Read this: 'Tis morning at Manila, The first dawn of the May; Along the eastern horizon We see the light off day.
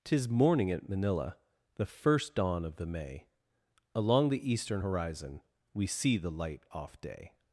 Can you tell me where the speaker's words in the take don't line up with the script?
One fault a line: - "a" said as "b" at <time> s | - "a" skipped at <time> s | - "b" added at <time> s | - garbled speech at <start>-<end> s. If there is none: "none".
none